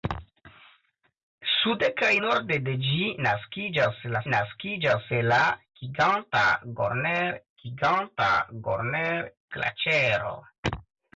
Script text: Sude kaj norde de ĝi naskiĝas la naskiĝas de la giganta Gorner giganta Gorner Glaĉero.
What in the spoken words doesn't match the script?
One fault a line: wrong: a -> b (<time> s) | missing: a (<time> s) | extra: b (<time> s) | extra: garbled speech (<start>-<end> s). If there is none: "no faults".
no faults